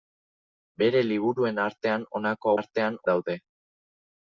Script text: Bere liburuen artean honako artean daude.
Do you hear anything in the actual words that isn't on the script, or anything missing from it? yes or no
no